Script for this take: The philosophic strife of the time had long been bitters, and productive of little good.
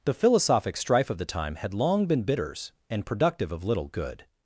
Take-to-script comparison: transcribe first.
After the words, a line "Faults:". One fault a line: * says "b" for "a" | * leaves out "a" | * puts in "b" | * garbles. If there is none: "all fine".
The philosophic strife of the time had long been bitters, and productive of little good.
Faults:
all fine